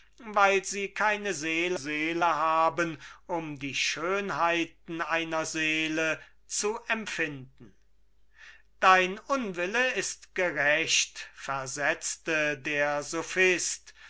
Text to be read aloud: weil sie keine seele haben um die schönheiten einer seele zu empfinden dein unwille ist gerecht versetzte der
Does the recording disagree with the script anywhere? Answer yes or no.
yes